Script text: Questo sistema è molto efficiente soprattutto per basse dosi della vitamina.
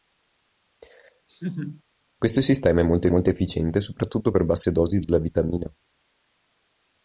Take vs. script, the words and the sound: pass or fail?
fail